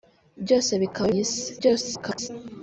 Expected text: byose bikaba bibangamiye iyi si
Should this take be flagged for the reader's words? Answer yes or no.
yes